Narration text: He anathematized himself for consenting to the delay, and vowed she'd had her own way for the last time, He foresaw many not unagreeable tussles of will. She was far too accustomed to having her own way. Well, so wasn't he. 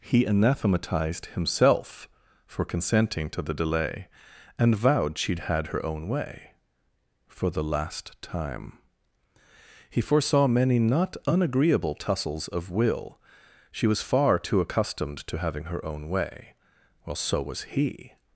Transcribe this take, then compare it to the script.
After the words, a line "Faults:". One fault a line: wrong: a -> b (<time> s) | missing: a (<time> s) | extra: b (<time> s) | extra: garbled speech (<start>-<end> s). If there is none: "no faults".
He anathematized himself for consenting to the delay, and vowed she'd had her own way for the last time, He foresaw many not unagreeable tussles of will. She was far too accustomed to having her own way. Well, so was he.
Faults:
wrong: wasn't -> was (17.4 s)